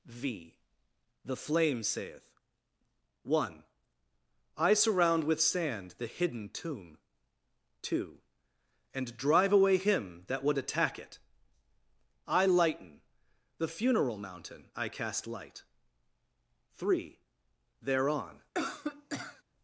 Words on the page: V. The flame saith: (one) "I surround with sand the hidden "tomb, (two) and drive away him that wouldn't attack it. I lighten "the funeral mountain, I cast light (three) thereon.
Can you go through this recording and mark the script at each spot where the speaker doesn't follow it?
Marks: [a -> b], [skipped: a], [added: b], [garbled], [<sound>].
V. The flame saith: (one) "I surround with sand the hidden "tomb, (two) and drive away him that [wouldn't -> would] attack it. I lighten "the funeral mountain, I cast light (three) thereon. [cough]